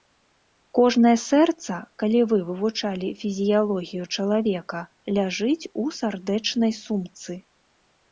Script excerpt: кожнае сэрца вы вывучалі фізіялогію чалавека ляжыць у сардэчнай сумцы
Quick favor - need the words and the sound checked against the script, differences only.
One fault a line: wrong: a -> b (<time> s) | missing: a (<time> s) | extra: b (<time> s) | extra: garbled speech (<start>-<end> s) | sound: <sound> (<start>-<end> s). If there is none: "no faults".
extra: калі (2.0 s)